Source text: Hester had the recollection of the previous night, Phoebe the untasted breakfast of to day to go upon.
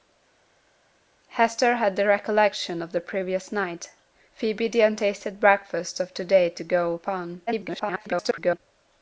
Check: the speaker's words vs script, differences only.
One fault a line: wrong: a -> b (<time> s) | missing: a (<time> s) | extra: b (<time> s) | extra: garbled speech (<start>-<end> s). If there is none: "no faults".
extra: garbled speech (7.5-8.6 s)